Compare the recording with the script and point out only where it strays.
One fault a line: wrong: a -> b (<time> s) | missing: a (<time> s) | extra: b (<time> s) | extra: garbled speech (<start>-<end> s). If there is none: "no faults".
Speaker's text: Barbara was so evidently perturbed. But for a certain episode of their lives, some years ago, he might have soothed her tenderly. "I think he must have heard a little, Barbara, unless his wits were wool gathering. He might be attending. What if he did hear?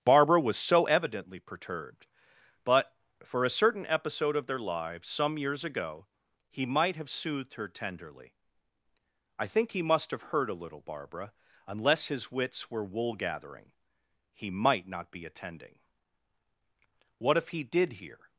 extra: not (14.9 s)